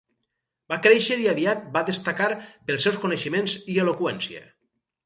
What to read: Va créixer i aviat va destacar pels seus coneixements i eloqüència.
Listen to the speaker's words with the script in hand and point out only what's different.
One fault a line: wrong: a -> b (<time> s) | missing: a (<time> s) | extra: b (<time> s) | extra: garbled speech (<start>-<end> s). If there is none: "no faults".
no faults